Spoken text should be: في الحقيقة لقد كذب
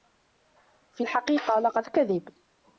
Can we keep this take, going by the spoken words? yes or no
yes